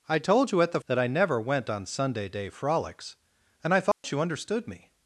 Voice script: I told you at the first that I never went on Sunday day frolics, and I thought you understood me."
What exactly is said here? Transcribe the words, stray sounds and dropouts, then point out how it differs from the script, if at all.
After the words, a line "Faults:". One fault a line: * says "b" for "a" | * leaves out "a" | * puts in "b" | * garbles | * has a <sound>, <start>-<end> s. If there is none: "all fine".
I told you at the that I never went on Sunday day frolics, and I thought you understood me."
Faults:
* leaves out "first"
* has a dropout, 3.9-4.0 s